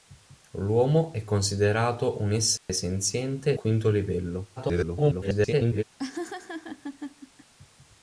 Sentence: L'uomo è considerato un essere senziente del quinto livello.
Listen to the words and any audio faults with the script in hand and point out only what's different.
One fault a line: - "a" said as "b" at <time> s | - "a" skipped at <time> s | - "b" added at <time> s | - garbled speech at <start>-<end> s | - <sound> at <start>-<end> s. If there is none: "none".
- dropout at 2.6-2.7 s
- "del" skipped at 3.6 s
- garbled speech at 4.6-5.8 s
- laugh at 6.0-7.5 s